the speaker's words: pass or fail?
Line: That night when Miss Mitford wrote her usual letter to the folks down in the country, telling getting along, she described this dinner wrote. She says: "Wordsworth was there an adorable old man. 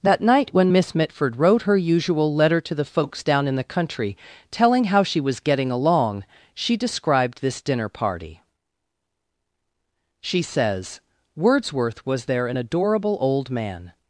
fail